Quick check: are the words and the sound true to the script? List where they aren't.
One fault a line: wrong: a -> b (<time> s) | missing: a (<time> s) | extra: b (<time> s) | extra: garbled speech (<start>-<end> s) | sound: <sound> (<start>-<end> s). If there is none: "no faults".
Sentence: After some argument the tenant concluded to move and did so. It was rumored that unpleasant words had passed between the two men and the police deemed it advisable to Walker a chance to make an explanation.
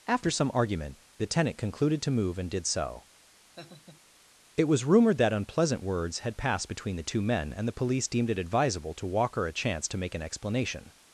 sound: laugh (3.6-4.0 s)